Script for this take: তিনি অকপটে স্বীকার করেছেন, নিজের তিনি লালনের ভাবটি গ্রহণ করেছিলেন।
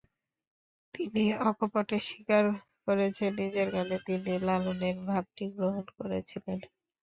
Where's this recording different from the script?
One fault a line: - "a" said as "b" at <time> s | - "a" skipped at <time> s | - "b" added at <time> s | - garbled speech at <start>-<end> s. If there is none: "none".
- "গানে" added at 3.7 s